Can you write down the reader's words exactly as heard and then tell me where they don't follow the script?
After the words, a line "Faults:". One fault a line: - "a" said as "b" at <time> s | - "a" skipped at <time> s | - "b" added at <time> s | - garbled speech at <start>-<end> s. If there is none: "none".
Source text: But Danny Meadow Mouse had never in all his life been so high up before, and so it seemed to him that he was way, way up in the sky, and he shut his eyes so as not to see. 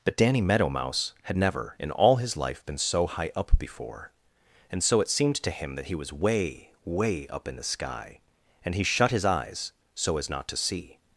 But Danny Meadow Mouse had never in all his life been so high up before, and so it seemed to him that he was way, way up in the sky, and he shut his eyes so as not to see.
Faults:
none